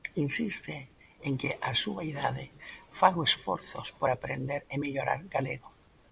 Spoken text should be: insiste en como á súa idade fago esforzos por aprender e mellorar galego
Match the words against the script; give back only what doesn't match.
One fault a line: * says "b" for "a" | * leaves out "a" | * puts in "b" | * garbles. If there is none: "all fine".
* says "que" for "como"